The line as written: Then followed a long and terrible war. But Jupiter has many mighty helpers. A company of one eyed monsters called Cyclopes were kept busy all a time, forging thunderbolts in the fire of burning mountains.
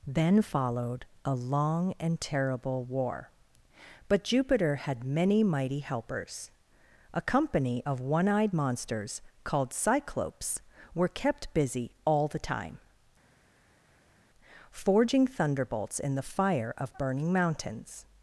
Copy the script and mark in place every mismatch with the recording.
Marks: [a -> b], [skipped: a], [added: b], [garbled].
Then followed a long and terrible war. But Jupiter [has -> had] many mighty helpers. A company of one eyed monsters called Cyclopes were kept busy all [a -> the] time, forging thunderbolts in the fire of burning mountains.